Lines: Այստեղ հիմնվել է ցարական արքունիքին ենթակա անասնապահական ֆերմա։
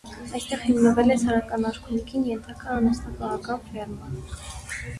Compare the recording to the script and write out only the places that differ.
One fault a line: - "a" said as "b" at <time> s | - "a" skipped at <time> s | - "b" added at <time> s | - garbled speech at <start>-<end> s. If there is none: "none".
none